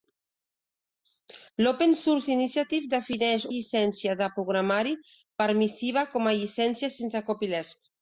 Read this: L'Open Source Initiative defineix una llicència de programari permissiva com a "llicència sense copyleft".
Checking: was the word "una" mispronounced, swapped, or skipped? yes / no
yes